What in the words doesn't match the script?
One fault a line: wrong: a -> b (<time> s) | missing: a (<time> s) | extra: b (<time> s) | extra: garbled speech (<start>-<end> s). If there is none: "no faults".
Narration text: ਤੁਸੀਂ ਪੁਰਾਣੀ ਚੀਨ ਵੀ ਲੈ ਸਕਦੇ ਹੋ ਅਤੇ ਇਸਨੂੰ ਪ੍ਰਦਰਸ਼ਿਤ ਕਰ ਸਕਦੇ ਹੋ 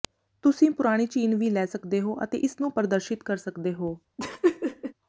no faults